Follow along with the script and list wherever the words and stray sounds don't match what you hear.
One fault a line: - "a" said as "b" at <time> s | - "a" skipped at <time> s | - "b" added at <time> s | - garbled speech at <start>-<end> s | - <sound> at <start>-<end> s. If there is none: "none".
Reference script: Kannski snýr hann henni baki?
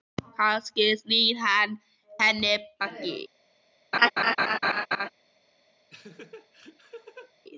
- laugh at 3.9-5.1 s
- laugh at 5.9-7.3 s